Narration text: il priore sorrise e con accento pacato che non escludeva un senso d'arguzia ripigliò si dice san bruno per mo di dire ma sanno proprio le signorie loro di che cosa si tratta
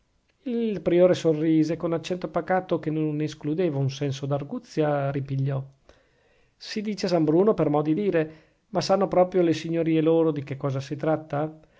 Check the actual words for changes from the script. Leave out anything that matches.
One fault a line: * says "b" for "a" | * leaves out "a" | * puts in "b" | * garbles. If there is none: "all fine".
all fine